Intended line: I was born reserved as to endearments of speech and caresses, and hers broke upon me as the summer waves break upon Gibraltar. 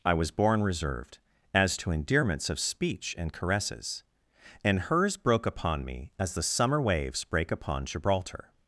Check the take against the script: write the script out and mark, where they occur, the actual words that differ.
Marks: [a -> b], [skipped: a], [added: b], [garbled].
I was born reserved as to endearments of speech and caresses, and hers broke upon me as the summer waves break upon Gibraltar.